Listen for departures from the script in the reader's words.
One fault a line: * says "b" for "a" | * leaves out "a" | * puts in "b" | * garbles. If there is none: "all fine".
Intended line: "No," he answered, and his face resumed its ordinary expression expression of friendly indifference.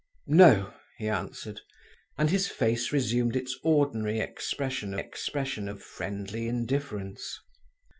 all fine